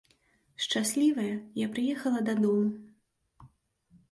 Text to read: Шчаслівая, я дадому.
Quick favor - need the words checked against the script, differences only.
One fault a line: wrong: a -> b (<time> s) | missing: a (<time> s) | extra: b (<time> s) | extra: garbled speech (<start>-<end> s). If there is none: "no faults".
extra: прыехала (1.7 s)